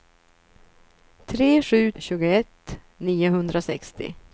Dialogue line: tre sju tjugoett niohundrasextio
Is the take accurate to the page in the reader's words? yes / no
yes